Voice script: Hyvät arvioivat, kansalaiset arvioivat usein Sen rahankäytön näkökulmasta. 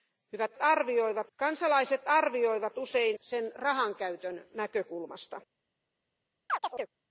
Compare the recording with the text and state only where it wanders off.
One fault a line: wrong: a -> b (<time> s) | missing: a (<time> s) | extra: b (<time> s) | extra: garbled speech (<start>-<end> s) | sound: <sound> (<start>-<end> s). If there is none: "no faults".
sound: chirp (6.5-6.9 s)